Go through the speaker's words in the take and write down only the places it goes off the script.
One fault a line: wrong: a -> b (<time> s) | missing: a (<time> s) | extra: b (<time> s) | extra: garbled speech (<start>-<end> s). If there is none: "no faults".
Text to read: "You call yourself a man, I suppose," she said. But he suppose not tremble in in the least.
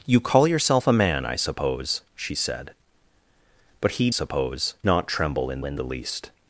no faults